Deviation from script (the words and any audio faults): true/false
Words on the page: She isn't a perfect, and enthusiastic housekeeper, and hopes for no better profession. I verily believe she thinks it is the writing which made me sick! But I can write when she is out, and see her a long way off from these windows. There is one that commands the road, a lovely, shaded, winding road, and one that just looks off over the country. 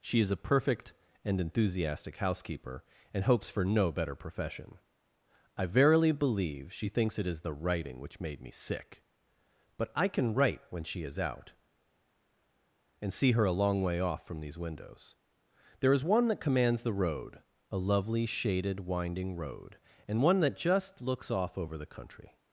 true